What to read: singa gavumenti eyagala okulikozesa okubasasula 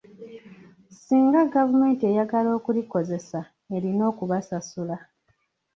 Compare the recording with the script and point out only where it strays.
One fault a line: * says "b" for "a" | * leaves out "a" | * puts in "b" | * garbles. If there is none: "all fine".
* puts in "erina"